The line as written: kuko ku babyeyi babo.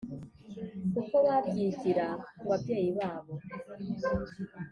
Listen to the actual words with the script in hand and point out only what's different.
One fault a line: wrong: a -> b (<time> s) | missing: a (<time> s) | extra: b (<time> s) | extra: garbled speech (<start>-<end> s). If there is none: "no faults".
extra: babyigira (1.3 s)